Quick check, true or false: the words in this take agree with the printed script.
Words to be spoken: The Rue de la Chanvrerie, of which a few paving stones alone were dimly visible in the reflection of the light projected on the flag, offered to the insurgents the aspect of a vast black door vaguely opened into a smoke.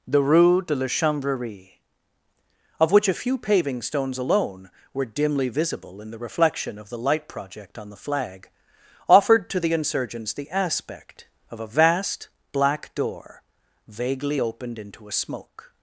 false